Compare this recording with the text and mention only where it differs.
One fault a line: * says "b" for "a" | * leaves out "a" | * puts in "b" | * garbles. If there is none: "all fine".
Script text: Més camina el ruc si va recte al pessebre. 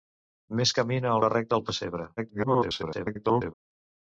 * leaves out "ruc si"
* garbles